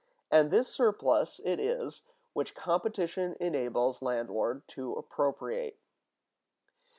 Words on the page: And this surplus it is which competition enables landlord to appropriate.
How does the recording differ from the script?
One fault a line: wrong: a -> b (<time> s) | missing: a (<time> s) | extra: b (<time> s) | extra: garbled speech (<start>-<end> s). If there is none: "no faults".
no faults